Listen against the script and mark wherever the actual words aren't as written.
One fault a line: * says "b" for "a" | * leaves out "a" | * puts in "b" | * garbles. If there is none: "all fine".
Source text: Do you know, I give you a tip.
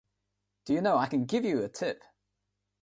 * puts in "can"